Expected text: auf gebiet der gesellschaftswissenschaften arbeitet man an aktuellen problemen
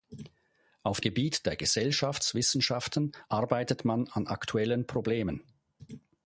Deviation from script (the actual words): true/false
false